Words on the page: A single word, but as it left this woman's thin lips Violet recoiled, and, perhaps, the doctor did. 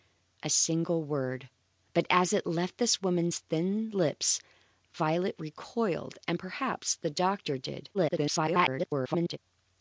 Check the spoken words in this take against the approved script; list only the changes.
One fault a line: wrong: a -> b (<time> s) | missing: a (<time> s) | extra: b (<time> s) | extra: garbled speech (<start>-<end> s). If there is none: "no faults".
extra: garbled speech (7.9-9.4 s)